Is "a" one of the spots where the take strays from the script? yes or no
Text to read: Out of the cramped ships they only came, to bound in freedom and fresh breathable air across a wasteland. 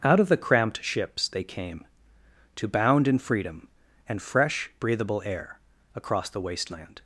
yes